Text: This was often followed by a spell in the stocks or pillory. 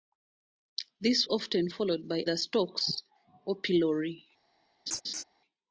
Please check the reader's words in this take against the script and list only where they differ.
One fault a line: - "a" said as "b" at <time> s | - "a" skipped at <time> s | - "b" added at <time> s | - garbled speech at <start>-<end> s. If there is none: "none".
- "was" skipped at 1.3 s
- "a spell in" skipped at 2.2 s